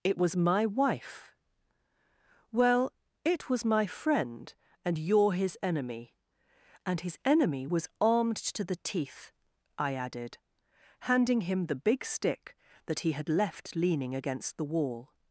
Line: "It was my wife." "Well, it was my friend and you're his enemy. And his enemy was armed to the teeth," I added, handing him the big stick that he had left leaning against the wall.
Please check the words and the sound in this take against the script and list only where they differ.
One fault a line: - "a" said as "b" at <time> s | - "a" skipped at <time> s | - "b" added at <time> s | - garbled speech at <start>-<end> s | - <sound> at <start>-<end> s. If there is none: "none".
none